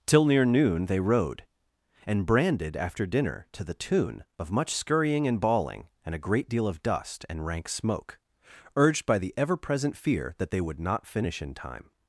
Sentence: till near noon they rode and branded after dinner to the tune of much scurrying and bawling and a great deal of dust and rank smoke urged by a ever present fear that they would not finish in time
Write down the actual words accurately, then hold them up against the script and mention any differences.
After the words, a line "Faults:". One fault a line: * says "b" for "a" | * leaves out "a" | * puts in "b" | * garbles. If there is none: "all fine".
till near noon they rode and branded after dinner to the tune of much scurrying and bawling and a great deal of dust and rank smoke urged by the ever present fear that they would not finish in time
Faults:
* says "the" for "a"